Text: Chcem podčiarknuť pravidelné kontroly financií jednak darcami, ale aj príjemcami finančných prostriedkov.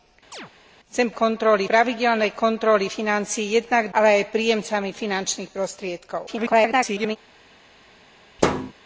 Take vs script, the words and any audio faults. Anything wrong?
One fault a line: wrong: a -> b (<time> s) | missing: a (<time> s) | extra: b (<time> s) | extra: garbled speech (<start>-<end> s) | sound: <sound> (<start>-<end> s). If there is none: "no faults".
sound: chirp (0.3-0.5 s)
wrong: podčiarknuť -> kontroly (1.1 s)
missing: darcami (3.9 s)
extra: garbled speech (6.3-7.2 s)
sound: thud (8.4-8.7 s)